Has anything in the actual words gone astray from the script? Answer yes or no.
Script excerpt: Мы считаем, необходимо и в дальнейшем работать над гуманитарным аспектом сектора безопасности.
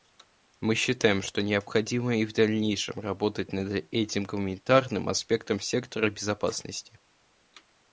yes